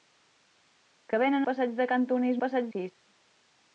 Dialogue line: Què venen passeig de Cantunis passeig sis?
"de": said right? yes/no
yes